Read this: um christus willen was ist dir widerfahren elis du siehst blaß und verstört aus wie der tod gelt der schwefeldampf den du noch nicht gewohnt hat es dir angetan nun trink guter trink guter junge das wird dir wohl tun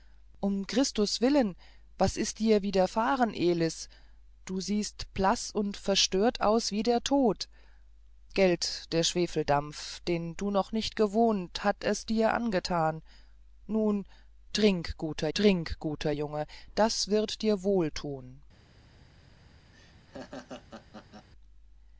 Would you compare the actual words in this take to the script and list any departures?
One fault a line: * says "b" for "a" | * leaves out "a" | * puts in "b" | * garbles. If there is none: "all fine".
all fine